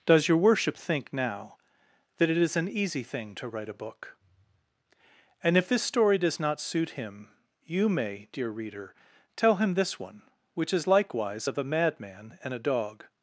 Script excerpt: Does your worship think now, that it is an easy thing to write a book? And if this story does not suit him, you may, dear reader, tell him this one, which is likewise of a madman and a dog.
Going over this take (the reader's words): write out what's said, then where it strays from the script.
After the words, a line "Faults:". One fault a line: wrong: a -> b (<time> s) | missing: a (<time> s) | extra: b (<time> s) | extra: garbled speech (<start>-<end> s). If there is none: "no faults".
Does your worship think now, that it is an easy thing to write a book? And if this story does not suit him, you may, dear reader, tell him this one, which is likewise of a madman and a dog.
Faults:
no faults